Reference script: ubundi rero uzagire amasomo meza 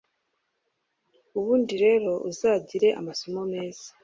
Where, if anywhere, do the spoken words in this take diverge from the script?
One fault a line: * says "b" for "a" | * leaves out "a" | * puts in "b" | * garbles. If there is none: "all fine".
all fine